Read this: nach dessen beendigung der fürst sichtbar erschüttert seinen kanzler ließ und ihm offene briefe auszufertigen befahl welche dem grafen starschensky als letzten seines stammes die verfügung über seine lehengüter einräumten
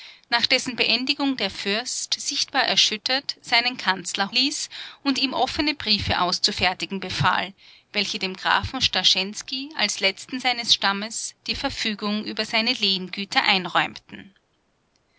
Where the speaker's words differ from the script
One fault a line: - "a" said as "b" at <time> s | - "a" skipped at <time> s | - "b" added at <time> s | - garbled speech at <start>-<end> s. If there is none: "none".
none